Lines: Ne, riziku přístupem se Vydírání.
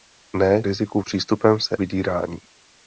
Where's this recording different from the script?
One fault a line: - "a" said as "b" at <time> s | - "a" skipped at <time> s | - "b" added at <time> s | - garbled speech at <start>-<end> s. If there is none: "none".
none